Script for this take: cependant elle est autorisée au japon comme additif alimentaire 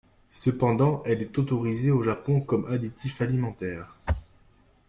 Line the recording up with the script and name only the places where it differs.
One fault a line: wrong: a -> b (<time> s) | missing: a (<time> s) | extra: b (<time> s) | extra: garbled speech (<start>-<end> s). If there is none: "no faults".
no faults